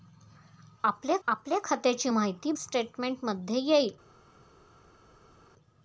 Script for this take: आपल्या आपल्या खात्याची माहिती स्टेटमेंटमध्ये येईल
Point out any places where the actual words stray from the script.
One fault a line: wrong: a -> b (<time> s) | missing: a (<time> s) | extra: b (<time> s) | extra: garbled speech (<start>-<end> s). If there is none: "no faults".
no faults